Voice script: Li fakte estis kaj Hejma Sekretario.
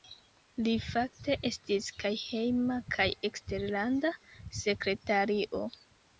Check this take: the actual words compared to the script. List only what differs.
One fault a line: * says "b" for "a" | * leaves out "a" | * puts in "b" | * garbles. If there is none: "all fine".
* puts in "kaj Eksterlanda"